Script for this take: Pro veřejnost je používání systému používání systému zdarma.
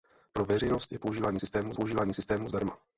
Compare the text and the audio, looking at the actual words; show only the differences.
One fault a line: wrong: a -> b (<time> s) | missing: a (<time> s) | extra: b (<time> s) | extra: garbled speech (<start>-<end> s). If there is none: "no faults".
no faults